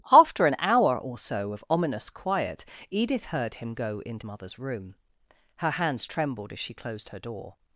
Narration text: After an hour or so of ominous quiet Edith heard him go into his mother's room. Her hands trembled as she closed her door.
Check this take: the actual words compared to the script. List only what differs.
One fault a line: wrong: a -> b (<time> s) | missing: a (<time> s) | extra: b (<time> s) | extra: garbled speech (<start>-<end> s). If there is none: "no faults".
missing: his (4.2 s)